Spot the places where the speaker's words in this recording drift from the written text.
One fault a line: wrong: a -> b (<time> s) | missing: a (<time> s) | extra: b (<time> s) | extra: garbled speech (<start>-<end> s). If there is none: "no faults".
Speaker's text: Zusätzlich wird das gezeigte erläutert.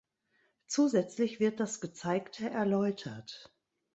no faults